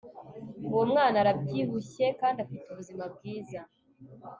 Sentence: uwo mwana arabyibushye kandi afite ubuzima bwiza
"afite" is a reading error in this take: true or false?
false